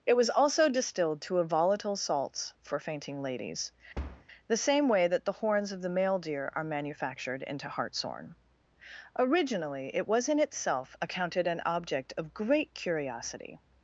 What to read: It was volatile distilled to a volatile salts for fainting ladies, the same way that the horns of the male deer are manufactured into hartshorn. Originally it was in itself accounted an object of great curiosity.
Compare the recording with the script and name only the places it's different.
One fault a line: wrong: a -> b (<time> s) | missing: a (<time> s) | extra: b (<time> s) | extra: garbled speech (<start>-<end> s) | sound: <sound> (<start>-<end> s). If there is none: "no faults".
wrong: volatile -> also (0.3 s)
sound: thud (3.9-4.2 s)